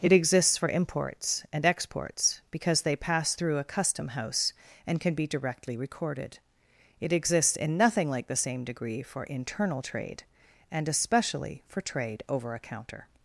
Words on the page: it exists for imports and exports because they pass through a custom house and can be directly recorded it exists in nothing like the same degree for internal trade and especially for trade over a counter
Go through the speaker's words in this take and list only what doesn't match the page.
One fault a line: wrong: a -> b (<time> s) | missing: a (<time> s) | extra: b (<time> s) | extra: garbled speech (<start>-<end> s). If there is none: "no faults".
no faults